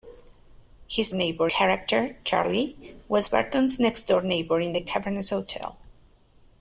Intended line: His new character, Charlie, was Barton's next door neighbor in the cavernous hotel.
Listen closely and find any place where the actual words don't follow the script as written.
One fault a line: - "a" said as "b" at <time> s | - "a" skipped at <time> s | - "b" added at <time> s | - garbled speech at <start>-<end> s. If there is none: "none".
- "new" said as "neighbor" at 1.1 s